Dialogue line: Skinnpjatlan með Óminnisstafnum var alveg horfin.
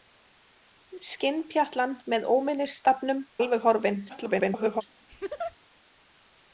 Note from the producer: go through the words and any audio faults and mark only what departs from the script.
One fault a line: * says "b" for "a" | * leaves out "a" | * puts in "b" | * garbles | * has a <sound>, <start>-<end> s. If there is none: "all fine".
* leaves out "var"
* garbles
* has a laugh, 5.1-5.6 s